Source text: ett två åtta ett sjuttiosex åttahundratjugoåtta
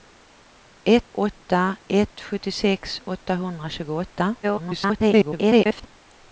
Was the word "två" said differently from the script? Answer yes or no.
yes